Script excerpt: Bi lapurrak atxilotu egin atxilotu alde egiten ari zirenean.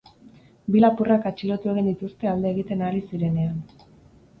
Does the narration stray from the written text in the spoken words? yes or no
yes